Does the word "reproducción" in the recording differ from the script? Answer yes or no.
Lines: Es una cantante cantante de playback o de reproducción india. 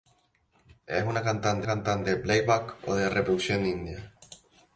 no